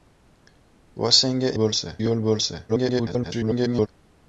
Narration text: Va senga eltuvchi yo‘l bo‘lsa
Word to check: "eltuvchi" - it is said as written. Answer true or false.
false